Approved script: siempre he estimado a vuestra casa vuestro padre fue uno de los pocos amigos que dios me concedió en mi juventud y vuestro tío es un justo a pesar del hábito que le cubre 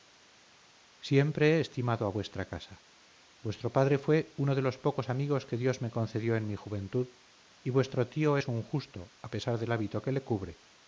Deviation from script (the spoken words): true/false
false